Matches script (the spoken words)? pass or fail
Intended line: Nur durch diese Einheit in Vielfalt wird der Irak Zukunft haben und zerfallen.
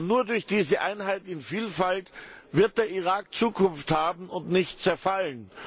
fail